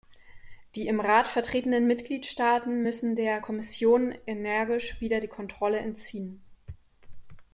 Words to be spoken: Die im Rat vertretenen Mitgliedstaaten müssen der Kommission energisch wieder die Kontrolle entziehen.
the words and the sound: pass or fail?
pass